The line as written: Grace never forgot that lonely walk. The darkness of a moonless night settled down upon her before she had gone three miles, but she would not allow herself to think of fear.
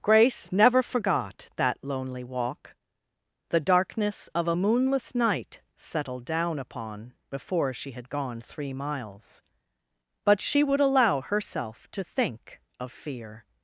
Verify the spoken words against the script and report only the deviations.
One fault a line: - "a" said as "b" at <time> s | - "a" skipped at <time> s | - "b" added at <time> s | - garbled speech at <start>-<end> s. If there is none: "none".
- "her" skipped at 7.1 s
- "not" skipped at 10.8 s